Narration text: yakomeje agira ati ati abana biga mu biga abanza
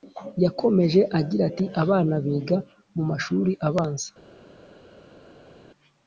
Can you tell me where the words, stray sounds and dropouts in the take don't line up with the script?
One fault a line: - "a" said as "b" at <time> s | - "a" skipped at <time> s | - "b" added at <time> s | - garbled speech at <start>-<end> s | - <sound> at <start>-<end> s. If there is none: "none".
- "ati" skipped at 1.6 s
- "biga" said as "mashuri" at 3.1 s